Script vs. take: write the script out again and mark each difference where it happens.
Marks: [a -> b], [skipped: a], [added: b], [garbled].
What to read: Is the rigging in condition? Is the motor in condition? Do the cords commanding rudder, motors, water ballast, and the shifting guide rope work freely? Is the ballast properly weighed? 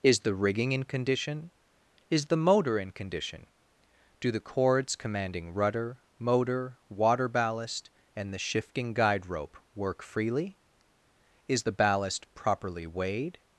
Is the rigging in condition? Is the motor in condition? Do the cords commanding rudder, [motors, -> motor] water ballast, and the shifting guide rope work freely? Is the ballast properly weighed?